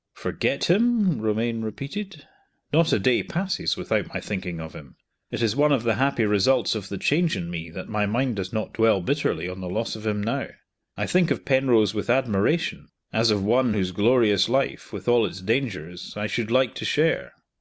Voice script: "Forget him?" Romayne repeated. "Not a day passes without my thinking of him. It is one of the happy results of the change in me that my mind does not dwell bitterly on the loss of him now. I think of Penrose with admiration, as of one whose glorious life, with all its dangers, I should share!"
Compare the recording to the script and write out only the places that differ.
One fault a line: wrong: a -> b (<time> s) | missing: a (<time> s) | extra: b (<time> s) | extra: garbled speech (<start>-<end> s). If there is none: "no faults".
extra: like to (16.5 s)